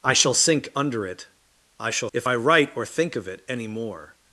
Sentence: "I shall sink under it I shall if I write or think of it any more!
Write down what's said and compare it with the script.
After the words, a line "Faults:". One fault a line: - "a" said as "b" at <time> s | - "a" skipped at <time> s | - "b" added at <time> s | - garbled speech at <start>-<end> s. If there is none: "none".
"I shall sink under it I shall if I write or think of it any more!
Faults:
none